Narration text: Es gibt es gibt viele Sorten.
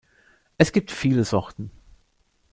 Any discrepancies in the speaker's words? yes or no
yes